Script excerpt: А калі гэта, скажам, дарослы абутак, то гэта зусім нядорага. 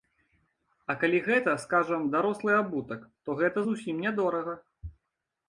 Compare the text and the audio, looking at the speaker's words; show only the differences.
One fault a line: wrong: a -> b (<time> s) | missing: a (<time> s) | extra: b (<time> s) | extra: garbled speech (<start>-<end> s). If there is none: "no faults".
no faults